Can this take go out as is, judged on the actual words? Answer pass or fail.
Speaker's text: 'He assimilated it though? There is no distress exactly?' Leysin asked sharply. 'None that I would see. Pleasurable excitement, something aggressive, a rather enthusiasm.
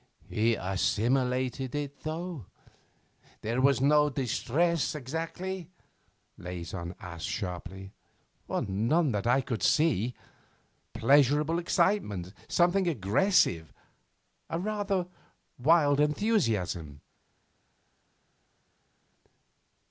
fail